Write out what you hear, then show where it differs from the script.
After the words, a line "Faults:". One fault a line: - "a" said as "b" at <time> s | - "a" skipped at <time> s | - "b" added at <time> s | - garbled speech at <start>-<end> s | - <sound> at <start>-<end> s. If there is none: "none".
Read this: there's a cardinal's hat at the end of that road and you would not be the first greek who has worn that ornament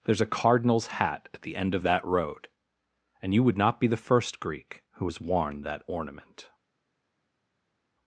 there's a cardinal's hat at the end of that road and you would not be the first greek who has worn that ornament
Faults:
none